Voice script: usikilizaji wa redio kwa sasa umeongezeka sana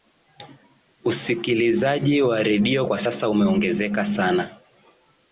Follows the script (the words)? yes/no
yes